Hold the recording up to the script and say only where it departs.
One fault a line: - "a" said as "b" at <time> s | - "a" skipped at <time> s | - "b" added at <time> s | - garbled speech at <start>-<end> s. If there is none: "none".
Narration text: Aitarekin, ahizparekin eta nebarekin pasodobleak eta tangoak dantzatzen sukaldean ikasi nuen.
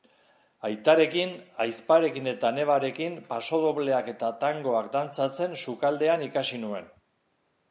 none